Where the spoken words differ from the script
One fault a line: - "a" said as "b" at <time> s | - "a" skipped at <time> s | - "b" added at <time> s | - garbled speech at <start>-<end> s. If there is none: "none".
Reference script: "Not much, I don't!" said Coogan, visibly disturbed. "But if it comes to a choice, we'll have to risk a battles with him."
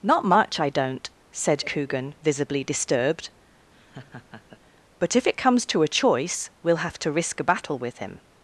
- "battles" said as "battle" at 7.4 s